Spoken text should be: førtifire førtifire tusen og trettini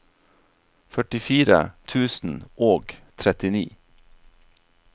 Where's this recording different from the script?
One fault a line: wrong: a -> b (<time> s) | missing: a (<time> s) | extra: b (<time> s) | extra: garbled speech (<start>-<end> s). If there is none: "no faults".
missing: førtifire (1.6 s)